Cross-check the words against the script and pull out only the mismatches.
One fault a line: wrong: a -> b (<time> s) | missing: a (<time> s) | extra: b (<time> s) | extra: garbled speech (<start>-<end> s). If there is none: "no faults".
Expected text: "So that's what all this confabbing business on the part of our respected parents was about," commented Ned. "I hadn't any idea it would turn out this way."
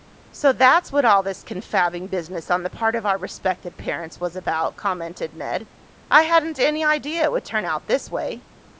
no faults